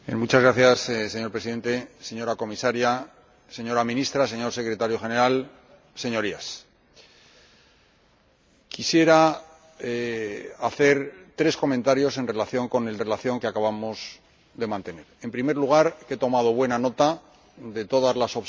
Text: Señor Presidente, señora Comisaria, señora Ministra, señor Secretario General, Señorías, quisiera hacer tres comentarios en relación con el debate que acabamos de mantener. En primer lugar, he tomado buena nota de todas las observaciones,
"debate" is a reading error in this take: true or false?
true